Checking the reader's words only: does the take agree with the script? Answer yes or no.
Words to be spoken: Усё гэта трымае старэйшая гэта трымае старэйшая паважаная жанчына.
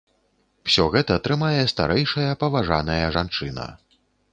no